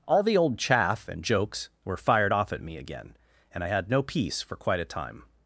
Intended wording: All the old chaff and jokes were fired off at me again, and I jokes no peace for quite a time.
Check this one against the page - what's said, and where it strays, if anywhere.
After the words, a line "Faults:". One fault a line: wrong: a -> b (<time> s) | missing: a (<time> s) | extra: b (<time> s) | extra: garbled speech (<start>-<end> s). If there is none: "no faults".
All the old chaff and jokes were fired off at me again, and I had no peace for quite a time.
Faults:
wrong: jokes -> had (3.7 s)